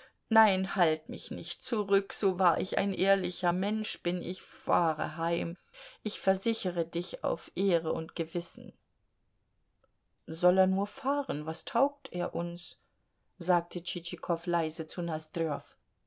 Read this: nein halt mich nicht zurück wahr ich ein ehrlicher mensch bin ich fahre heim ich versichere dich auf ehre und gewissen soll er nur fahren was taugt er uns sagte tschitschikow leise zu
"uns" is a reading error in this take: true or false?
false